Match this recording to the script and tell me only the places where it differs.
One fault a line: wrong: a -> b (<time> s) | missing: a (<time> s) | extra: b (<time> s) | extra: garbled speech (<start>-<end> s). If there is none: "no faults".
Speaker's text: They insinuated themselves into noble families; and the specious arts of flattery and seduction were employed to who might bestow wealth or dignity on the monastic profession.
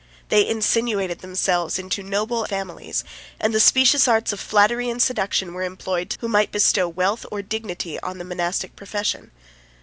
no faults